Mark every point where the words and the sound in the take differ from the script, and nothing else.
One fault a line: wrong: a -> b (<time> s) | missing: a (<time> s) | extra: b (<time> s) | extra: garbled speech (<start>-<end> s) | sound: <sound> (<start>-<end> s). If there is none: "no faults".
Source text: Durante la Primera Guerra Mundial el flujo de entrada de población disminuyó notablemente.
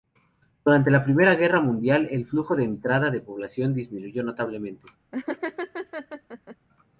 sound: laugh (5.1-6.6 s)